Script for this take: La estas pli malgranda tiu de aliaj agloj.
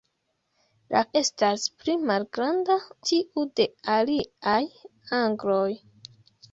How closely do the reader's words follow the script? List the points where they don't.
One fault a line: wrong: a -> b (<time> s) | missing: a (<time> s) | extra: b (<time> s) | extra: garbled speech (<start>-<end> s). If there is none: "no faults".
no faults